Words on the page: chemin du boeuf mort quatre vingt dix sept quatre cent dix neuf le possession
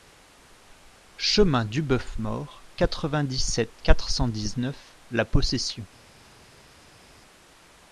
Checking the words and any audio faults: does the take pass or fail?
fail